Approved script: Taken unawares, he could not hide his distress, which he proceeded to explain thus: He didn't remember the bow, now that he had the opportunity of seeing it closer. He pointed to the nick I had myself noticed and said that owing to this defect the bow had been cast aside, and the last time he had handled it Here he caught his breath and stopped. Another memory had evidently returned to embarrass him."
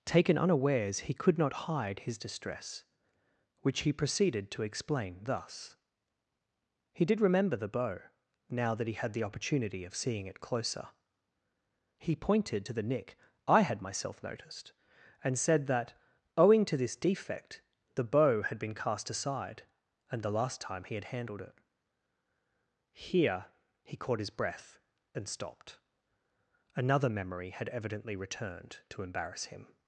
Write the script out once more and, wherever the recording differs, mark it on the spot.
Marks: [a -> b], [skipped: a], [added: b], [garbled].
Taken unawares, he could not hide his distress, which he proceeded to explain thus: He [didn't -> did] remember the bow, now that he had the opportunity of seeing it closer. He pointed to the nick I had myself noticed and said that owing to this defect the bow had been cast aside, and the last time he had handled it Here he caught his breath and stopped. Another memory had evidently returned to embarrass him."